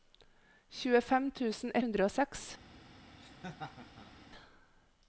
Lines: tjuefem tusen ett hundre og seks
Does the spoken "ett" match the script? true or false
false